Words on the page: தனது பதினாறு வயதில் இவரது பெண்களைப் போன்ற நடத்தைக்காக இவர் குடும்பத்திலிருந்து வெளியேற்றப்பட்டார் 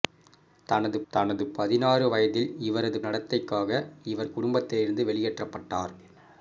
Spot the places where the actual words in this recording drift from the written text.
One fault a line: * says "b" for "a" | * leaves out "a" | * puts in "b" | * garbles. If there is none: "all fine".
* puts in "தனது"
* leaves out "பெண்களைப் போன்ற"